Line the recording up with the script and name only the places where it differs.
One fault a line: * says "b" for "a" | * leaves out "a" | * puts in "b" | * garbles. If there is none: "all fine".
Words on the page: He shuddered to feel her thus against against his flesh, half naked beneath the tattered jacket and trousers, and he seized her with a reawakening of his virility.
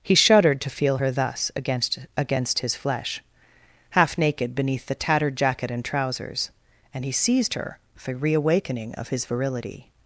all fine